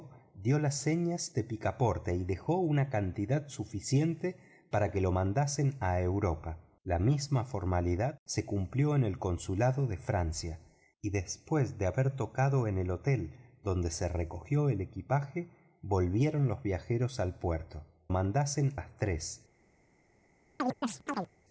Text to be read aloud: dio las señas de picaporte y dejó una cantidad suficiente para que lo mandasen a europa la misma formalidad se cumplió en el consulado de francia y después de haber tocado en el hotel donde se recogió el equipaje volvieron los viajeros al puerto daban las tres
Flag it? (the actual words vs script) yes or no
yes